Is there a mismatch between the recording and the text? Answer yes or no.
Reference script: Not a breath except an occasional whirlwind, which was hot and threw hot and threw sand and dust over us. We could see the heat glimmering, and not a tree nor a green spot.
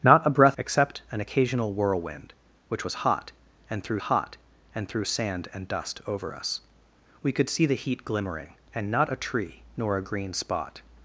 no